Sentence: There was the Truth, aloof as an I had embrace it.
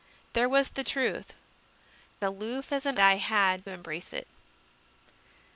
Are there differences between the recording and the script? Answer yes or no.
no